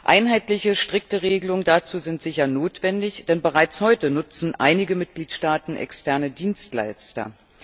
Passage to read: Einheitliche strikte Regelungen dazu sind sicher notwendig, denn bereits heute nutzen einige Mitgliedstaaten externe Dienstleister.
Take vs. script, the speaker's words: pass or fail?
pass